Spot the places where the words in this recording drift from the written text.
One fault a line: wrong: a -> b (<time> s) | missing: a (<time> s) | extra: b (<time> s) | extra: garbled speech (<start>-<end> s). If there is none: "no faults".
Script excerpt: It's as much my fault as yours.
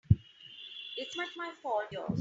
missing: as (1.1 s)
missing: as (1.9 s)